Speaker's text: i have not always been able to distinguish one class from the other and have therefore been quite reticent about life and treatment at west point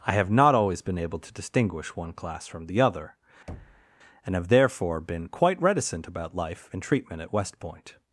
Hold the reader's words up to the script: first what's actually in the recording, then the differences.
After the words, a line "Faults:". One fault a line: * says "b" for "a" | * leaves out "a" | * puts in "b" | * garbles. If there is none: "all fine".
i have not always been able to distinguish one class from the other and have therefore been quite reticent about life and treatment at west point
Faults:
all fine